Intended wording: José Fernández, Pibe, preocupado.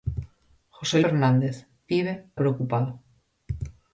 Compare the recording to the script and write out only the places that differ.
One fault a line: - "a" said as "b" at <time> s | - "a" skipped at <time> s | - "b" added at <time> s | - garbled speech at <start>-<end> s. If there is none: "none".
none